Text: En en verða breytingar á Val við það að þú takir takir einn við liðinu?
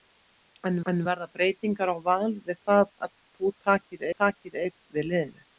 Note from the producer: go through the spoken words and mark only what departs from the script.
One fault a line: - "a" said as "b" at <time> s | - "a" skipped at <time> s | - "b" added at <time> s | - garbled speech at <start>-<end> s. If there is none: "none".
none